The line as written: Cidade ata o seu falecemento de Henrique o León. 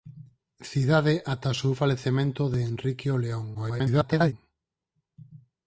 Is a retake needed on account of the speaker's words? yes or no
yes